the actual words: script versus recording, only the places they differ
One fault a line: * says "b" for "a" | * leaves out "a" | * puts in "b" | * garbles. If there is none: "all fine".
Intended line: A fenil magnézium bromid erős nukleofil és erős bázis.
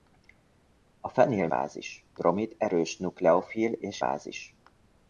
* says "bázis" for "magnézium"
* leaves out "erős"